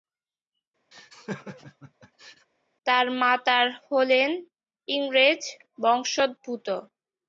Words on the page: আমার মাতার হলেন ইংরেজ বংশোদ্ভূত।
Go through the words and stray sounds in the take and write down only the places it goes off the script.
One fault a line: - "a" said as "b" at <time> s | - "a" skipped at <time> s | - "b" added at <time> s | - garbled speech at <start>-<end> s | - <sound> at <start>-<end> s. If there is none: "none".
- laugh at 0.9-2.5 s
- "আমার" said as "তার" at 2.9 s